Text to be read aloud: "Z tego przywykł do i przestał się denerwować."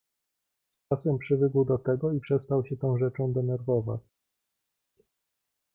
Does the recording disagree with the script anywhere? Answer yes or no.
yes